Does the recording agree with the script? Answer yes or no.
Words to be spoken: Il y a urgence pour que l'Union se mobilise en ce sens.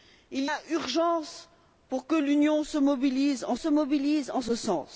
no